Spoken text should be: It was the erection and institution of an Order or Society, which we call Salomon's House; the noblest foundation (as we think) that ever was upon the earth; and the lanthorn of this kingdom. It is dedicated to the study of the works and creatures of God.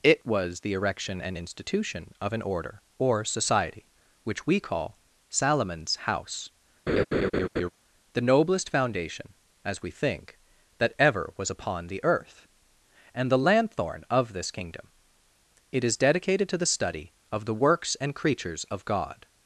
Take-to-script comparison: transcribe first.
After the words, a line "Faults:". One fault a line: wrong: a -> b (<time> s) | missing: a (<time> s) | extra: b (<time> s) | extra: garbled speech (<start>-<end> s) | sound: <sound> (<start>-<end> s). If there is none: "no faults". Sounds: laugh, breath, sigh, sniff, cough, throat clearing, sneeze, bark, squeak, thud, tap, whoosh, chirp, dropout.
It was the erection and institution of an Order or Society, which we call Salomon's House; the noblest foundation (as we think) that ever was upon the earth; and the lanthorn of this kingdom. It is dedicated to the study of the works and creatures of God.
Faults:
sound: laugh (6.9-7.7 s)